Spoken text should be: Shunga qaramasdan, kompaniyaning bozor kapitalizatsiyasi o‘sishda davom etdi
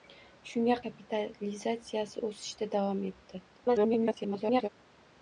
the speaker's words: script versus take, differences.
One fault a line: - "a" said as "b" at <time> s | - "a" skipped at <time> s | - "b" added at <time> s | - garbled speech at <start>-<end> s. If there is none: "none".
- "qaramasdan kompaniyaning bozor" skipped at 0.8 s
- garbled speech at 3.5-4.7 s